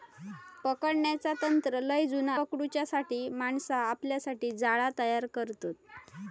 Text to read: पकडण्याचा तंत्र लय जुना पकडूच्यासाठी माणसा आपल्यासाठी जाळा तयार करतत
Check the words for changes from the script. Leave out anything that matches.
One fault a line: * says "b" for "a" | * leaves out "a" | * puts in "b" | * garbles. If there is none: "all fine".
all fine